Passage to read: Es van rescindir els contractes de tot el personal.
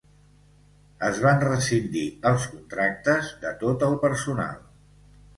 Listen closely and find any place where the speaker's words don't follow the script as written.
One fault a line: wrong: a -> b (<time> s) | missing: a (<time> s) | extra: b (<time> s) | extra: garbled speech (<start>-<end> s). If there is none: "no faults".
no faults